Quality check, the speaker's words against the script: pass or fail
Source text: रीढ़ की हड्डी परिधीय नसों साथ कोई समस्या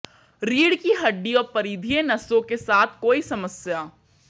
fail